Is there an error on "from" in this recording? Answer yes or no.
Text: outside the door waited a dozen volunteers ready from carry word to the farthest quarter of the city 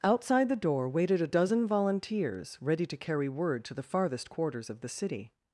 yes